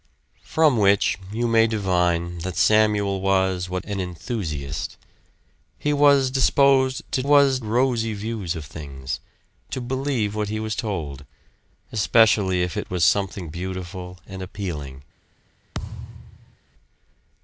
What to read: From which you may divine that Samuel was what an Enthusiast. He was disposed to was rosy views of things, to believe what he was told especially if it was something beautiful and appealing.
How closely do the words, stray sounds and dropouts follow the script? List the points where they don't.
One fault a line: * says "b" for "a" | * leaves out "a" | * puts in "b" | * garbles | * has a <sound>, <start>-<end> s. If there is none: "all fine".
* has a thud, 15.7-16.6 s